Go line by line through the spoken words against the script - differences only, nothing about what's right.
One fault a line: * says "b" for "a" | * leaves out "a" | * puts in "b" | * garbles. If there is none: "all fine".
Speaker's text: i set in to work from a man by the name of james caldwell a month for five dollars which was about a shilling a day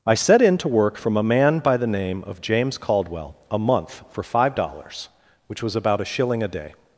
all fine